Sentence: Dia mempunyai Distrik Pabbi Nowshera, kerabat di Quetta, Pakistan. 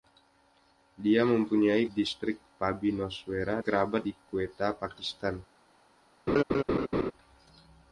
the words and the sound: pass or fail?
fail